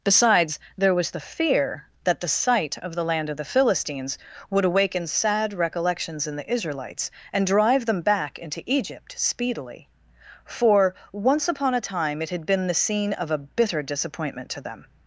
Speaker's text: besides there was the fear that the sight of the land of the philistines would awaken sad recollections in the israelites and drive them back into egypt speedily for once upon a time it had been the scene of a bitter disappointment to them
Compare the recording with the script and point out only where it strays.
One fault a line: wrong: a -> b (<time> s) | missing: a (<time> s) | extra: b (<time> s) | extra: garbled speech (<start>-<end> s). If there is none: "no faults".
no faults